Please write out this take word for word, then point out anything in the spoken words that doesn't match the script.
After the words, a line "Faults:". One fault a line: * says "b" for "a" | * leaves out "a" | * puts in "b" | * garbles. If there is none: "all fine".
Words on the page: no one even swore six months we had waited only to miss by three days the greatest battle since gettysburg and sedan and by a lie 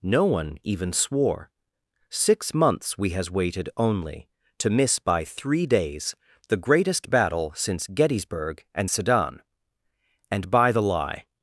no one even swore six months we has waited only to miss by three days the greatest battle since gettysburg and sedan and by the lie
Faults:
* says "has" for "had"
* says "the" for "a"